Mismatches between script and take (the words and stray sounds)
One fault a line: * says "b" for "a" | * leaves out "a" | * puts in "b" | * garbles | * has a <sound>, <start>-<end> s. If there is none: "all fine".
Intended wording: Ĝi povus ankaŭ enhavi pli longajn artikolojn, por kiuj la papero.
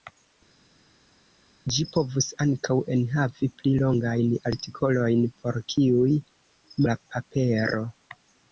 all fine